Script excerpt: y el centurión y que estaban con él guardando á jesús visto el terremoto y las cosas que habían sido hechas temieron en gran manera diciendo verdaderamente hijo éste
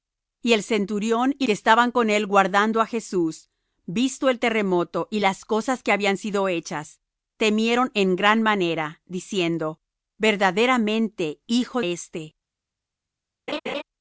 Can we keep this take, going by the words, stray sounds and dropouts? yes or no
no